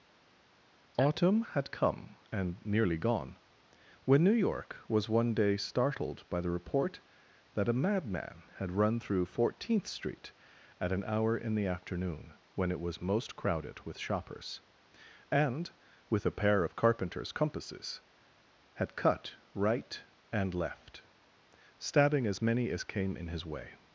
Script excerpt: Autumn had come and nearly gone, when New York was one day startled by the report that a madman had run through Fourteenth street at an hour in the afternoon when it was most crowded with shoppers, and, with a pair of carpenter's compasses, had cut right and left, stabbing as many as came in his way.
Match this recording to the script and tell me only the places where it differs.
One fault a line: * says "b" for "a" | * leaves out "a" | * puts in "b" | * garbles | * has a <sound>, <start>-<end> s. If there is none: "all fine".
all fine